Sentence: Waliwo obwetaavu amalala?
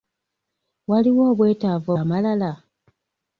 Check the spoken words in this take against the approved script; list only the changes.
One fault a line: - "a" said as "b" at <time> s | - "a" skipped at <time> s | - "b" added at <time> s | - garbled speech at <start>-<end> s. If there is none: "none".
none